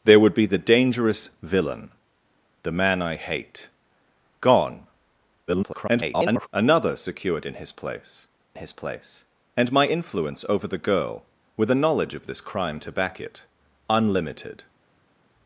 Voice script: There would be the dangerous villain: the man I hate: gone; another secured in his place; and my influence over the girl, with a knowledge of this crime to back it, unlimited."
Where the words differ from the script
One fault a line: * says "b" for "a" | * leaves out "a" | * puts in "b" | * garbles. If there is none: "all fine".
* garbles
* puts in "his place"